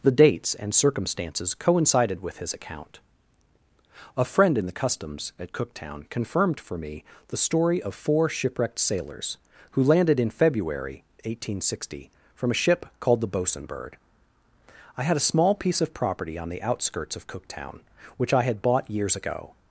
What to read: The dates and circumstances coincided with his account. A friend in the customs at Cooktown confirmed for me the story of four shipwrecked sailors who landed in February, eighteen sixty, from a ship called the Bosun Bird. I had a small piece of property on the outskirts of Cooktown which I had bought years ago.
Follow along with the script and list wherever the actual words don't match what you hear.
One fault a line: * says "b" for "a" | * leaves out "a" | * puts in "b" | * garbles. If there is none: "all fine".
all fine